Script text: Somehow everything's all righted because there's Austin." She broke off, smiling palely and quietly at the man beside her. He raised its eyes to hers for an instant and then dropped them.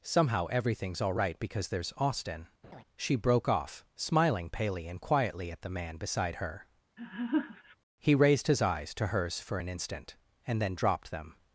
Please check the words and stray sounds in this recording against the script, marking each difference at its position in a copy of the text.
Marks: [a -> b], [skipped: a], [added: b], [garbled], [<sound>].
Somehow everything's all [righted -> right] because there's Austin." [laugh] She broke off, smiling palely and quietly at the man beside her. [laugh] He raised [its -> his] eyes to hers for an instant and then dropped them.